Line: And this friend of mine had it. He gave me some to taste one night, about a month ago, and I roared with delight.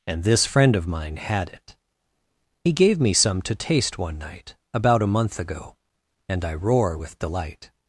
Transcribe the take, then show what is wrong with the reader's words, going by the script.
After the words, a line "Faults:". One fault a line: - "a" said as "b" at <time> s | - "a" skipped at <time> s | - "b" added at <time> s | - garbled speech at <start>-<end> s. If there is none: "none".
And this friend of mine had it. He gave me some to taste one night, about a month ago, and I roar with delight.
Faults:
- "roared" said as "roar" at 6.5 s